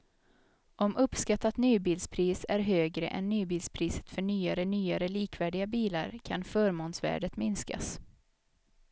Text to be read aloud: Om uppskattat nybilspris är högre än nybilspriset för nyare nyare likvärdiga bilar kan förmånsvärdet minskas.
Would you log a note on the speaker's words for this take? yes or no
no